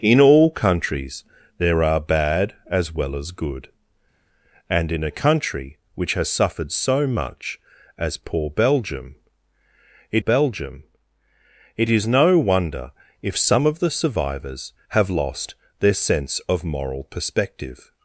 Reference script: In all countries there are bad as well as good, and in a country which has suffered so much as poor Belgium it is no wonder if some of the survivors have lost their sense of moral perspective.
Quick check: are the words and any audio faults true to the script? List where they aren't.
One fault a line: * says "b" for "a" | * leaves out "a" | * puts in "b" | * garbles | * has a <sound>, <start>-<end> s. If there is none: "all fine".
* puts in "Belgium it"